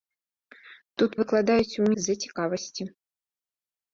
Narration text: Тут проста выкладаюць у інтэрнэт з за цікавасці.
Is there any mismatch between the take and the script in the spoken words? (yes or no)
yes